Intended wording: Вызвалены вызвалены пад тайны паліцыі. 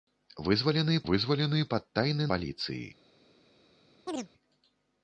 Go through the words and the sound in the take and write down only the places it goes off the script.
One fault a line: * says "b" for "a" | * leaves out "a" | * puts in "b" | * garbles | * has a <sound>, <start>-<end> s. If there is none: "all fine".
* has a chirp, 4.1-4.3 s